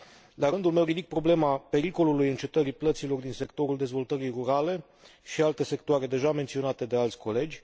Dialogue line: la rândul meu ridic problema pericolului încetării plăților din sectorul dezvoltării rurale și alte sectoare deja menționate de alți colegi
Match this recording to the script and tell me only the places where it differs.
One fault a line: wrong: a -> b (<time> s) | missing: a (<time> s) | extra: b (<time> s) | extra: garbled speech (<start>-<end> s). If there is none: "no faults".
no faults